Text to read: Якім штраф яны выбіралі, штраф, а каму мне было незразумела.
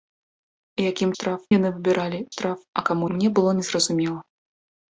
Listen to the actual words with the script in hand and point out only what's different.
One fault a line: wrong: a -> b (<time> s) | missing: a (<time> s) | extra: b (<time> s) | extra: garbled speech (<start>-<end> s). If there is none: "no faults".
no faults